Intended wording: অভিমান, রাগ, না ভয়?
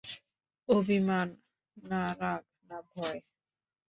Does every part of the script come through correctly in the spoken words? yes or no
no